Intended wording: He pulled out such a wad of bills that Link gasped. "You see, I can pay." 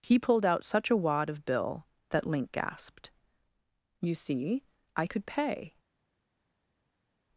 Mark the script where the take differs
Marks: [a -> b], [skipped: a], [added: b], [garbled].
He pulled out such a wad of [bills -> bill] that Link gasped. "You see, I [can -> could] pay."